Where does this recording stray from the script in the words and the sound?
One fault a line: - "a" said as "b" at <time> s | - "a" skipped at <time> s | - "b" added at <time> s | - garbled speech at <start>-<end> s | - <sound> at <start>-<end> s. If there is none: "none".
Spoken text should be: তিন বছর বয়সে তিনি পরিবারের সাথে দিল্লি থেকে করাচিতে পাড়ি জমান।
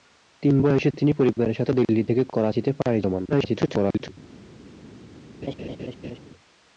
- "বছর" skipped at 0.6 s
- garbled speech at 3.3-4.1 s
- laugh at 5.4-6.2 s